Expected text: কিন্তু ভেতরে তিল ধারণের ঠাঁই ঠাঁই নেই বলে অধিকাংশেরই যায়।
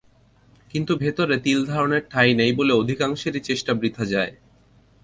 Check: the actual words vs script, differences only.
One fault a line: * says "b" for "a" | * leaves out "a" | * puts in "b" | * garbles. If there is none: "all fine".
* leaves out "ঠাঁই"
* puts in "চেষ্টা বৃথা"